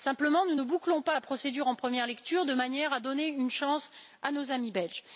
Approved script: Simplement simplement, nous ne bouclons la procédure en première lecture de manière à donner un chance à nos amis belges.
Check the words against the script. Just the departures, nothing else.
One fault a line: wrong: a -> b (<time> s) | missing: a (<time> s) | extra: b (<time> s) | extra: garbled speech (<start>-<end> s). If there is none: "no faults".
missing: simplement (0.5 s)
extra: pas (1.0 s)
wrong: un -> une (3.3 s)